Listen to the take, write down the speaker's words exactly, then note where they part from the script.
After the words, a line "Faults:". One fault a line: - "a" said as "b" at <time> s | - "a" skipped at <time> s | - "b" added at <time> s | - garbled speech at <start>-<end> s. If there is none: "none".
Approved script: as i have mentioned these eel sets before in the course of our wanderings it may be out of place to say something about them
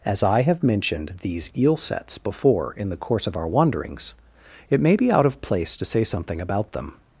as i have mentioned these eel sets before in the course of our wanderings it may be out of place to say something about them
Faults:
none